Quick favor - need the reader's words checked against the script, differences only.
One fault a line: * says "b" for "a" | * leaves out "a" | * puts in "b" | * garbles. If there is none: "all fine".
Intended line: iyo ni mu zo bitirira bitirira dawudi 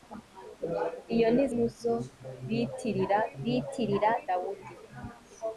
all fine